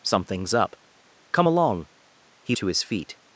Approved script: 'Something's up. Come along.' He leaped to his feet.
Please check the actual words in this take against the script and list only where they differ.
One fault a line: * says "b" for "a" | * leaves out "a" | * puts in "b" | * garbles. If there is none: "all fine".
* leaves out "leaped"